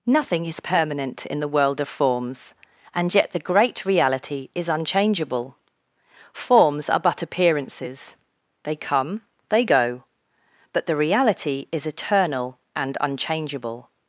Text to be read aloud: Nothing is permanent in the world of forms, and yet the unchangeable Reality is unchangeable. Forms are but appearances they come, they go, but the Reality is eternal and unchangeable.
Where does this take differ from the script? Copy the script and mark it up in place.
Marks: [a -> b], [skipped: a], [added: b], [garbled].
Nothing is permanent in the world of forms, and yet the [unchangeable -> great] Reality is unchangeable. Forms are but appearances they come, they go, but the Reality is eternal and unchangeable.